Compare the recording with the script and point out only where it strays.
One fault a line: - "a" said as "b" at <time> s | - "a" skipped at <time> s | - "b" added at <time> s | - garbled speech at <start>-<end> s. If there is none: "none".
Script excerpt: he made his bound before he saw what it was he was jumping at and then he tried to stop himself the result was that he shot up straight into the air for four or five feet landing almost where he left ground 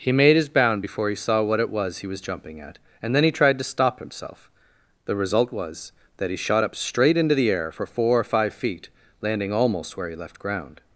none